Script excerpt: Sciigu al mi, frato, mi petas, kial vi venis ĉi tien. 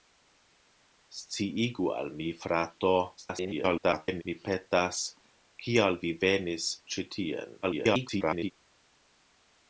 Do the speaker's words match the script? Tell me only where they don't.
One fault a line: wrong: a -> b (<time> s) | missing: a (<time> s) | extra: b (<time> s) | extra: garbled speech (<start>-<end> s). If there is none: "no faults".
extra: garbled speech (3.2-4.2 s)
extra: garbled speech (7.6-8.5 s)